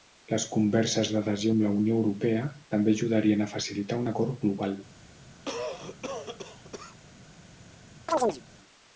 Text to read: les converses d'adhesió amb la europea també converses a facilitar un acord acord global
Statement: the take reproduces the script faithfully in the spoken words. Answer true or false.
false